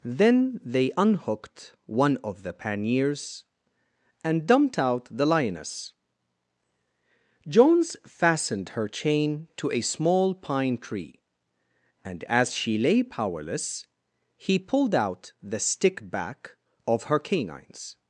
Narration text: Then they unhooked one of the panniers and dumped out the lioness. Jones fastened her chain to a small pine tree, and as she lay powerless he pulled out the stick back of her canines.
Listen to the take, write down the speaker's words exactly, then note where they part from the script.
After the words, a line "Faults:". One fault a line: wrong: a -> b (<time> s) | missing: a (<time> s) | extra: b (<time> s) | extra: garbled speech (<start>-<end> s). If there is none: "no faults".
Then they unhooked one of the panniers and dumped out the lioness. Jones fastened her chain to a small pine tree, and as she lay powerless he pulled out the stick back of her canines.
Faults:
no faults